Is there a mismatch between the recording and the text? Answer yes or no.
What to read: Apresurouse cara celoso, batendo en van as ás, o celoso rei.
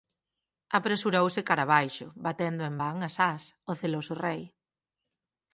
yes